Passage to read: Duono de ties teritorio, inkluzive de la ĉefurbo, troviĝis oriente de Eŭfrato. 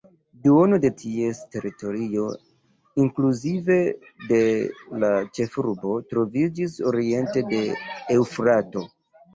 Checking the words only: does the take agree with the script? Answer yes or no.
yes